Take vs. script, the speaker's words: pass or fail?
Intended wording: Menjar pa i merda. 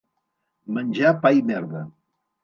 pass